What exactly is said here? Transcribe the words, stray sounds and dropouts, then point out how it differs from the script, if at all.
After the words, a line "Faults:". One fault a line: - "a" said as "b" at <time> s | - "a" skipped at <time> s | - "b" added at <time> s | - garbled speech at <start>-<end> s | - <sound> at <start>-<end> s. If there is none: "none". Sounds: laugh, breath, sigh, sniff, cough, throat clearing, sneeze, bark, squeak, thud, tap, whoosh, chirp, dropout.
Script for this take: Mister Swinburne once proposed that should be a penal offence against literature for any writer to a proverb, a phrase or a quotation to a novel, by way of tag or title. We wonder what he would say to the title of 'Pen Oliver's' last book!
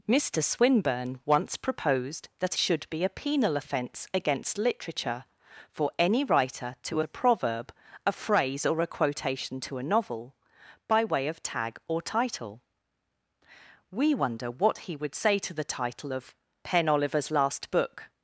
Mister Swinburne once proposed that should be a penal offence against literature for any writer to a proverb, a phrase or a quotation to a novel, by way of tag or title. We wonder what he would say to the title of 'Pen Oliver's' last book!
Faults:
none